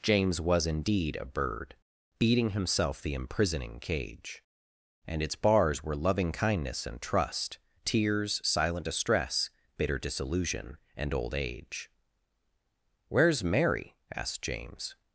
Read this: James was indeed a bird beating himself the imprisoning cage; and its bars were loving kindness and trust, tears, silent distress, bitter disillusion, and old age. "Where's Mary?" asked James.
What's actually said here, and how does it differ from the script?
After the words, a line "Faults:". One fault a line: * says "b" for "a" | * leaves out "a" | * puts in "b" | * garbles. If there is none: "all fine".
James was indeed a bird beating himself the imprisoning cage; and its bars were loving kindness and trust, tears, silent distress, bitter disillusion, and old age. "Where's Mary?" asked James.
Faults:
all fine